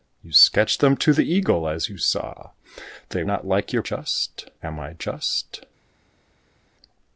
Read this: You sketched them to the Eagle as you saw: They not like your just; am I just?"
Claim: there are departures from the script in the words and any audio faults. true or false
false